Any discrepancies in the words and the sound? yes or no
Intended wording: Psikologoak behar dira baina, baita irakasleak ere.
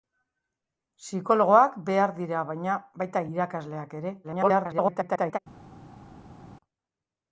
yes